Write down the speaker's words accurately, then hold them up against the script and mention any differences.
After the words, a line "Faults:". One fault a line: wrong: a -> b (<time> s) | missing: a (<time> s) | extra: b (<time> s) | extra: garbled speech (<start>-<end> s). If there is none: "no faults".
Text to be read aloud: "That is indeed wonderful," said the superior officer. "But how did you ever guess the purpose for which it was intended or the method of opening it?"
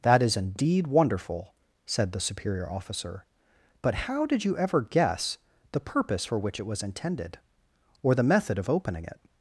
"That is indeed wonderful," said the superior officer. "But how did you ever guess the purpose for which it was intended or the method of opening it?"
Faults:
no faults